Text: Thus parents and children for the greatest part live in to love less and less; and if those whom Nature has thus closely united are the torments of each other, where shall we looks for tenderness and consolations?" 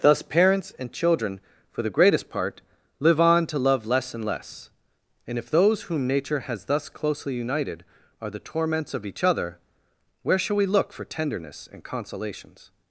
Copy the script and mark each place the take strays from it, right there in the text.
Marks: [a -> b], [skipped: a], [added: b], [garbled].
Thus parents and children for the greatest part live [in -> on] to love less and less; and if those whom Nature has thus closely united are the torments of each other, where shall we [looks -> look] for tenderness and consolations?"